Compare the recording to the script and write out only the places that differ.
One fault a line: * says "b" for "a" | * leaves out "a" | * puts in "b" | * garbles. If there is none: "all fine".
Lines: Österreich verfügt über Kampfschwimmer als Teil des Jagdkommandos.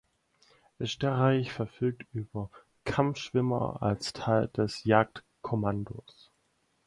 all fine